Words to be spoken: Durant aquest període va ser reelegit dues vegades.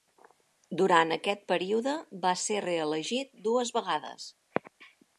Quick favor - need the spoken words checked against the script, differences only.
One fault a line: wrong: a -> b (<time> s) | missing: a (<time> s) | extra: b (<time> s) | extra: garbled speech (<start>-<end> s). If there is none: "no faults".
no faults